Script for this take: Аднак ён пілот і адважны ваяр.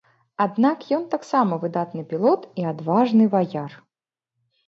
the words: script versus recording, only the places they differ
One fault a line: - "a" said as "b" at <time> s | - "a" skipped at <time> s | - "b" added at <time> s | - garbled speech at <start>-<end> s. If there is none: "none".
- "таксама выдатны" added at 1.1 s